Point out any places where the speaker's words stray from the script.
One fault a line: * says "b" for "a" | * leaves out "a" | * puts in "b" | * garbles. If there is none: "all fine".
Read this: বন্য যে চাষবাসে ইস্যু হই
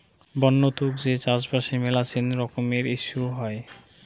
* puts in "তুক"
* puts in "মেলাছেন রকমের"